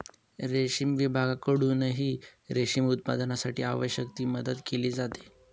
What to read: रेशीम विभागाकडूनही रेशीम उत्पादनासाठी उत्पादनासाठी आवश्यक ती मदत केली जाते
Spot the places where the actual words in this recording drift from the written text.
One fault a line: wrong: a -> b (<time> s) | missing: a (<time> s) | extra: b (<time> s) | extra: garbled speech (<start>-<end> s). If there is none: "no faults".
missing: उत्पादनासाठी (3.6 s)